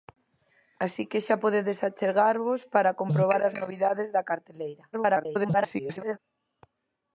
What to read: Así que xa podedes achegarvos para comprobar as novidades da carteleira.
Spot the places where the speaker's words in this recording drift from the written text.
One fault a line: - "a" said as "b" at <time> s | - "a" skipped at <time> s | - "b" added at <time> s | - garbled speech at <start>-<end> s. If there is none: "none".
- garbled speech at 4.9-6.2 s